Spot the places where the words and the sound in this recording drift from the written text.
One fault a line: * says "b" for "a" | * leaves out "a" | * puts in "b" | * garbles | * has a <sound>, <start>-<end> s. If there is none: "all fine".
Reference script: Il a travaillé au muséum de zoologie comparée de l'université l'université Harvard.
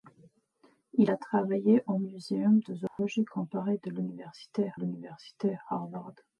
* has a dropout, 2.9-3.0 s